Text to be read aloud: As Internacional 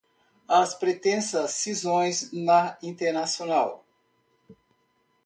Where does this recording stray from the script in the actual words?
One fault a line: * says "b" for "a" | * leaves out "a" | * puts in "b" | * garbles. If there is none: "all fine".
* puts in "Pretensas Cisões na"